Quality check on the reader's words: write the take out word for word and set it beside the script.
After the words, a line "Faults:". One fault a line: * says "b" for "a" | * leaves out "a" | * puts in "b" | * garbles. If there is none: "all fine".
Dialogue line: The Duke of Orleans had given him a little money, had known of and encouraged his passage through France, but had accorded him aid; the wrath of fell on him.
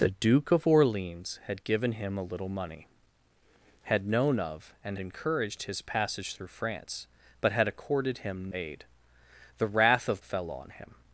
The Duke of Orleans had given him a little money, had known of and encouraged his passage through France, but had accorded him aid; the wrath of fell on him.
Faults:
all fine